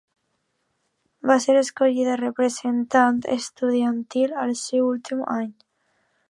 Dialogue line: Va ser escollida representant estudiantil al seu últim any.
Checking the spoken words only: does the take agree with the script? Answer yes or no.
yes